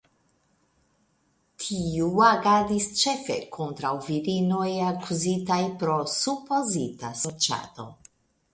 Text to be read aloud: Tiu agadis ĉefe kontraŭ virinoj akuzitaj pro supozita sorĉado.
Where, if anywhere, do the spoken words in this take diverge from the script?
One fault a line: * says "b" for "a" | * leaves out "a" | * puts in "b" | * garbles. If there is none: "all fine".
all fine